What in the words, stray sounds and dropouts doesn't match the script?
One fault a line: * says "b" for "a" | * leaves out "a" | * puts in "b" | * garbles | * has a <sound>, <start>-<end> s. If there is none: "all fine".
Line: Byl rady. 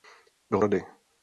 all fine